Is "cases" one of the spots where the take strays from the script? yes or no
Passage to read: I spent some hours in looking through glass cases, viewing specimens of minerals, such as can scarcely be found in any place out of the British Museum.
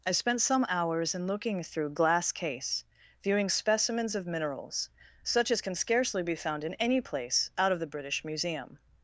yes